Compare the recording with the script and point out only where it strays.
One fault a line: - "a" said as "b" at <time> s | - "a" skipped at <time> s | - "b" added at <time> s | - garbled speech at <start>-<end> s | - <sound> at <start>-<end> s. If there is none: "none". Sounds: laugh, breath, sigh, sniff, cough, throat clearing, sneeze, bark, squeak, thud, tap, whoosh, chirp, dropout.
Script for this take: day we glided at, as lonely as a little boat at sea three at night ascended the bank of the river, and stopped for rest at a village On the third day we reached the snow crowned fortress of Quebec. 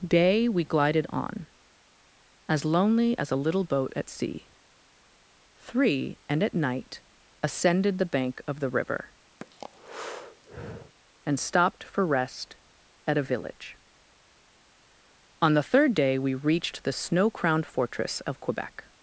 - "at" said as "on" at 1.1 s
- "and" added at 6.3 s
- breath at 9.4-11.0 s